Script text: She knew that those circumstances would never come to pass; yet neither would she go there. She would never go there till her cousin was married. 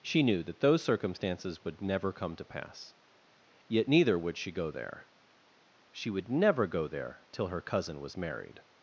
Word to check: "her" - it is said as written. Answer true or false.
true